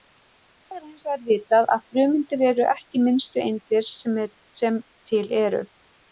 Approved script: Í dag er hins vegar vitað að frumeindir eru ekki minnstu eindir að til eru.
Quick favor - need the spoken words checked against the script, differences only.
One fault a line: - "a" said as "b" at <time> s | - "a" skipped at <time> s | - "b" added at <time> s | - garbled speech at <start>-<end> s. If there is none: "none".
- "að" said as "sem" at 4.6 s